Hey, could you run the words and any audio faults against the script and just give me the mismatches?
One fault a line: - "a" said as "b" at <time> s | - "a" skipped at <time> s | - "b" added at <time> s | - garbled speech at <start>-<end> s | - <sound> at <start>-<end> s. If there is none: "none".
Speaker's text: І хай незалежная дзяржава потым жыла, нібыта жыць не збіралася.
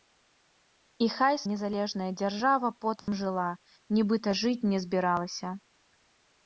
- dropout at 3.0-3.1 s